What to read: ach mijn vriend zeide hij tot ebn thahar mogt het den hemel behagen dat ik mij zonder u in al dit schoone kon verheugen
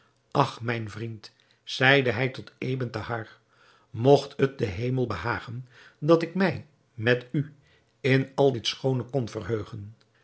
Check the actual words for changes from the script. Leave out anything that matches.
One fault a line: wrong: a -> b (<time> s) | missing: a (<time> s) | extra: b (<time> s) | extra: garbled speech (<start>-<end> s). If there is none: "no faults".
wrong: zonder -> met (6.9 s)